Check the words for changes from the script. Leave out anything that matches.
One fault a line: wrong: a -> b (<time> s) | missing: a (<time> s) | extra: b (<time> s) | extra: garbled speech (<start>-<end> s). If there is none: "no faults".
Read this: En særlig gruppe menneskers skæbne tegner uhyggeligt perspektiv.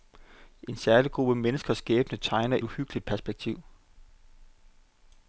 no faults